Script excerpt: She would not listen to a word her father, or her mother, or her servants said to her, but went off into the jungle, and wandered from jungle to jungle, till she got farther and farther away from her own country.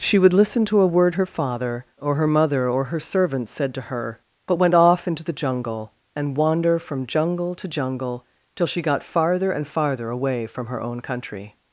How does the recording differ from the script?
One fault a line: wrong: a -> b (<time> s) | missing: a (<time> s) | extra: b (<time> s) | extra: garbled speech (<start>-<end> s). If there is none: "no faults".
missing: not (0.3 s)
wrong: wandered -> wander (6.4 s)